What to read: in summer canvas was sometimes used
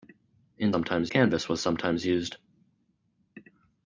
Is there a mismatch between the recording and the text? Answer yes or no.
yes